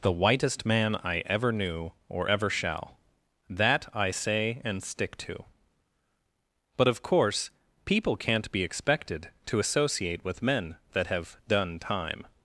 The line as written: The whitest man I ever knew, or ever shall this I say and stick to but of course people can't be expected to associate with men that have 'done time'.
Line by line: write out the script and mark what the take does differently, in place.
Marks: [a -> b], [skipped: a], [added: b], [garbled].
The whitest man I ever knew, or ever shall [this -> that] I say and stick to but of course people can't be expected to associate with men that have 'done time'.